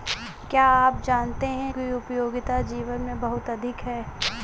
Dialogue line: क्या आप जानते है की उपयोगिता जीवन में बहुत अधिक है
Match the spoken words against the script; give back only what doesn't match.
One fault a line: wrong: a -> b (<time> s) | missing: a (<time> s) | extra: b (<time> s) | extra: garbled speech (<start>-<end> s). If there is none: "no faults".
no faults